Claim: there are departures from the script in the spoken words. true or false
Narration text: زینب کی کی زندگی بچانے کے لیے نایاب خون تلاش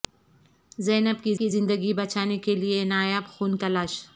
false